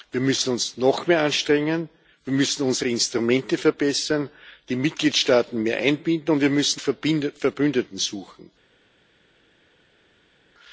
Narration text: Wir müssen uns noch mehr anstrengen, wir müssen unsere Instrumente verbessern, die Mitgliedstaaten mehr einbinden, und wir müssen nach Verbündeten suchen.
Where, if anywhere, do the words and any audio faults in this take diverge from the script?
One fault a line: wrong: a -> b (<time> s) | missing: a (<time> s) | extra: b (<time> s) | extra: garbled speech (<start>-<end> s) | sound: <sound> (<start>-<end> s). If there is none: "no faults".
missing: nach (6.8 s)